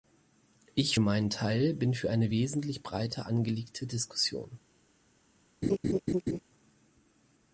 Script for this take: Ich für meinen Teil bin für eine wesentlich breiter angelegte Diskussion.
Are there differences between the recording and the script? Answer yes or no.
yes